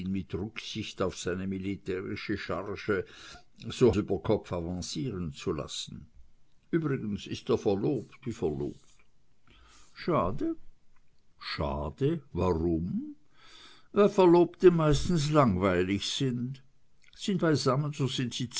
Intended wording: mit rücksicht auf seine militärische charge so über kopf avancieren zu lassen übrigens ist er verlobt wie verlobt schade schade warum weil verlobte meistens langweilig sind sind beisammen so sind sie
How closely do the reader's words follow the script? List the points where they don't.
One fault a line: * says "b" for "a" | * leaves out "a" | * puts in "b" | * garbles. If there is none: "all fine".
all fine